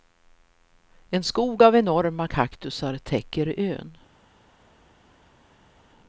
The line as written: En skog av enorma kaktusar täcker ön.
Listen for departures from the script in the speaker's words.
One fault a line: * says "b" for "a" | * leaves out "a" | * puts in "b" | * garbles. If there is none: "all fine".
all fine